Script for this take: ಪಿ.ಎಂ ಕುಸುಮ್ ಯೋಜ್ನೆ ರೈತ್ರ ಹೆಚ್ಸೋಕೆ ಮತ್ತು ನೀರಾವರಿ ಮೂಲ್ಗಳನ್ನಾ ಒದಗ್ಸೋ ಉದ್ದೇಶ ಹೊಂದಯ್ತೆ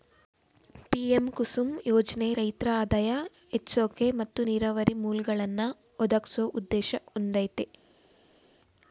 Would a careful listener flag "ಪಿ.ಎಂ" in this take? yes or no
no